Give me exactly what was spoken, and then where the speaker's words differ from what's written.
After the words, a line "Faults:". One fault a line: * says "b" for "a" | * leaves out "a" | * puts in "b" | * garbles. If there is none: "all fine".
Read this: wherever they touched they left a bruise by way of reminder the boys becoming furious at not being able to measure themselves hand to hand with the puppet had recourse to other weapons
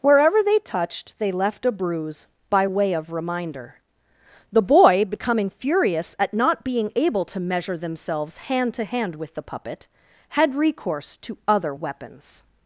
wherever they touched they left a bruise by way of reminder the boy becoming furious at not being able to measure themselves hand to hand with the puppet had recourse to other weapons
Faults:
* says "boy" for "boys"